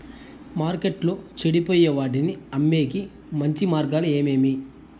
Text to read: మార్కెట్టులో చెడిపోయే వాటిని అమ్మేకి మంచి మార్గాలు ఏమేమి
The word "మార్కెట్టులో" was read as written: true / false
true